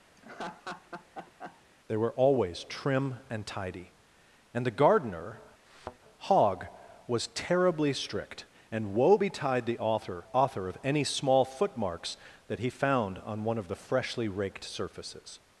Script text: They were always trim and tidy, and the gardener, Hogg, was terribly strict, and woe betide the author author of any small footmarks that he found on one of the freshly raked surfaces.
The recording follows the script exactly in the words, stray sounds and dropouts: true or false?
false